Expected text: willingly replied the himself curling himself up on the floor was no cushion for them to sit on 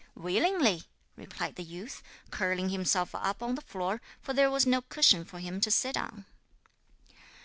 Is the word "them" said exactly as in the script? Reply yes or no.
no